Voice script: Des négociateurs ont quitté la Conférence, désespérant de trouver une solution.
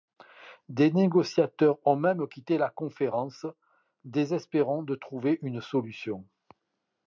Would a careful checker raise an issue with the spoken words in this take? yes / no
yes